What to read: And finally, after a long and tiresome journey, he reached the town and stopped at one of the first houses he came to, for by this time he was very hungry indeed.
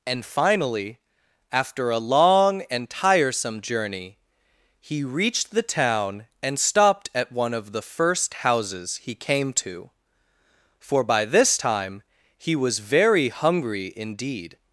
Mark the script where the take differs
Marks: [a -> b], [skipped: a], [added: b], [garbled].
And finally, after a long and tiresome journey, he reached the town and stopped at one of the first houses he came to, for by this time he was very hungry indeed.